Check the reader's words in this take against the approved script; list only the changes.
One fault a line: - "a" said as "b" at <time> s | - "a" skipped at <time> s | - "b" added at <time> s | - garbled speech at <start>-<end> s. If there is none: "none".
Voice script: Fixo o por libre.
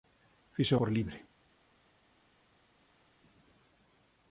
none